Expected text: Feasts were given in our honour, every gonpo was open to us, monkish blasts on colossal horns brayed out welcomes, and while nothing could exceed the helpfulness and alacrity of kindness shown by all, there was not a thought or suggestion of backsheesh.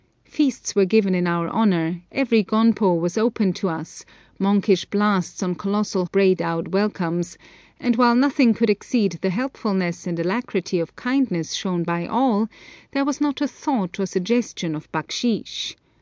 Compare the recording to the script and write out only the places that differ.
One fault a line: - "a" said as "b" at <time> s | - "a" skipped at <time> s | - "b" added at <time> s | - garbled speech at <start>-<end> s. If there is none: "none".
- "horns" skipped at 6.0 s